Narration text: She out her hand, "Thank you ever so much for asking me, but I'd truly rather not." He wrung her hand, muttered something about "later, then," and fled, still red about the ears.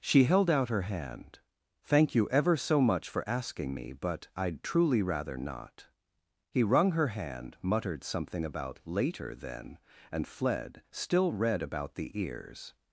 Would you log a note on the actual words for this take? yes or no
yes